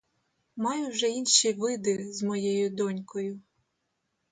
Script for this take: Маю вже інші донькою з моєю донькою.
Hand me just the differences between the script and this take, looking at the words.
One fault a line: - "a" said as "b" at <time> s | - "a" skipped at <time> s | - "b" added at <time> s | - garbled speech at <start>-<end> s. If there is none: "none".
- "донькою" said as "види" at 1.5 s